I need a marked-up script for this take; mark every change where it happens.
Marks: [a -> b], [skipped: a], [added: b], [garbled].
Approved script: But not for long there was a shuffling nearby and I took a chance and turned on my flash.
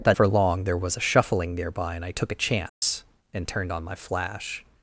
But [skipped: not] for long there was a shuffling nearby and I took a chance and turned on my flash.